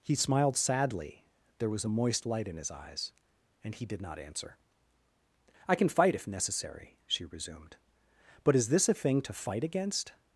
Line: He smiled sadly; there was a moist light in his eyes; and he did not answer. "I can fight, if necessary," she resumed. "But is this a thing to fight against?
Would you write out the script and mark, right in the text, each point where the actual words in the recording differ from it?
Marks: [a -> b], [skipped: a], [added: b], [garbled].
He smiled sadly; there was a moist light in his eyes; and he did not answer. "I can fight, if necessary," she resumed. "But is this a thing to fight against?